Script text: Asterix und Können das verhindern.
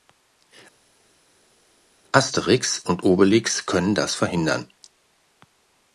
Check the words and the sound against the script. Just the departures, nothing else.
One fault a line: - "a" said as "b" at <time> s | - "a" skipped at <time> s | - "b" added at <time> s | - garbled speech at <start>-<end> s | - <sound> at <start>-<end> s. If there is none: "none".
- "Obelix" added at 3.0 s